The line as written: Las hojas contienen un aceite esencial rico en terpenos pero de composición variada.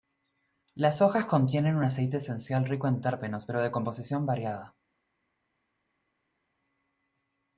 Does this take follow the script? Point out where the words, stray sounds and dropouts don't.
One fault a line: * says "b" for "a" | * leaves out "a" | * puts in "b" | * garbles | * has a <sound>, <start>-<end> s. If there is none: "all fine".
all fine